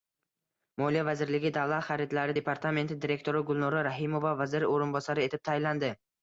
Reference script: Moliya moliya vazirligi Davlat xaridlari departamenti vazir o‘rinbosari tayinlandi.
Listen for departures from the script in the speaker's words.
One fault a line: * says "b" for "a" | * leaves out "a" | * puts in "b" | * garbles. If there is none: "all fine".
* leaves out "moliya"
* puts in "direktori Gulnora Rahimova"
* puts in "etib"